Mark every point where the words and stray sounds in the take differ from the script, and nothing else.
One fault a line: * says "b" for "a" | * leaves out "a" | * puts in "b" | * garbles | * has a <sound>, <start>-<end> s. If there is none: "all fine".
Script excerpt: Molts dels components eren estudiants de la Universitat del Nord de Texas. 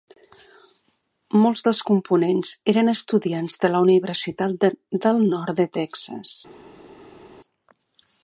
all fine